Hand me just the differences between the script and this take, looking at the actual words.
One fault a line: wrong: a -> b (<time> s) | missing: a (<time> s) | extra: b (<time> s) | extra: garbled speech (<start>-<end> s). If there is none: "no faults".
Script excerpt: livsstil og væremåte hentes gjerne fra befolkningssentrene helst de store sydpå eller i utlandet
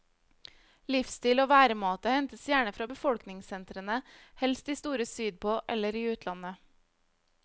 no faults